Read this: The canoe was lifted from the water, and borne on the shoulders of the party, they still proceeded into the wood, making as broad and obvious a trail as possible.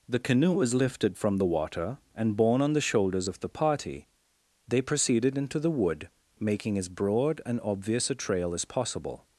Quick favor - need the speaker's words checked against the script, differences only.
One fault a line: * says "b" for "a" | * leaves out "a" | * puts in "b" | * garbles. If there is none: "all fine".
* leaves out "still"